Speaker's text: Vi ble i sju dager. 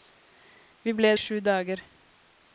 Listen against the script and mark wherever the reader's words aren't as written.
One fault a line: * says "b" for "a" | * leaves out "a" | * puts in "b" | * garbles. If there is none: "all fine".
all fine